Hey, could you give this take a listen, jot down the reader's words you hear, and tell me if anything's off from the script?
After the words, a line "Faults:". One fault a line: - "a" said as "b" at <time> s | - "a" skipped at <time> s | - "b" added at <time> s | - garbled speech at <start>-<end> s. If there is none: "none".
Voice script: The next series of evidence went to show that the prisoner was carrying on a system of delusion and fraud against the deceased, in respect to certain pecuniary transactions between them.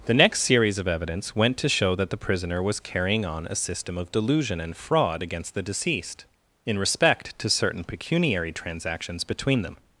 The next series of evidence went to show that the prisoner was carrying on a system of delusion and fraud against the deceased, in respect to certain pecuniary transactions between them.
Faults:
none